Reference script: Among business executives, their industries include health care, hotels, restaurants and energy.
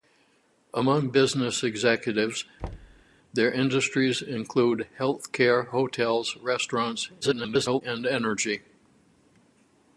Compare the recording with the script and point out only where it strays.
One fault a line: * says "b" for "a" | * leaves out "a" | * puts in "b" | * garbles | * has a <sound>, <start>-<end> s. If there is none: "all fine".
* has a thud, 2.6-3.0 s
* garbles